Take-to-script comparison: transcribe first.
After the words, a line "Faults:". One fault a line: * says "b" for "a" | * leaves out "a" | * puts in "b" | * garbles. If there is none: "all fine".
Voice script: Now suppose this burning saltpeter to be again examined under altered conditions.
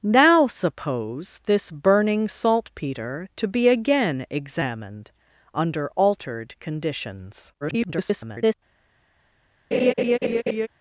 Now suppose this burning saltpeter to be again examined under altered conditions. [garbled]
Faults:
* garbles